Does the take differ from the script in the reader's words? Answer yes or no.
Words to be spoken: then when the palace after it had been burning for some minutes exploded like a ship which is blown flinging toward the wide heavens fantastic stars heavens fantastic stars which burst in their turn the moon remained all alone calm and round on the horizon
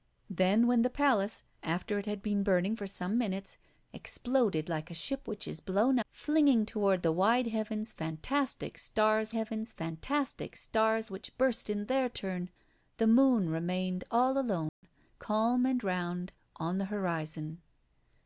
no